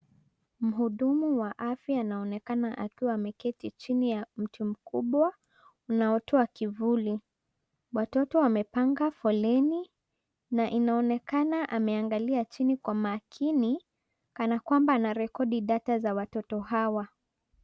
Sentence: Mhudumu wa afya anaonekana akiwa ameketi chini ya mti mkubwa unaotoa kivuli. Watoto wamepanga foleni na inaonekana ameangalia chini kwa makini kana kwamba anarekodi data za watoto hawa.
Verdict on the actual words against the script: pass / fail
pass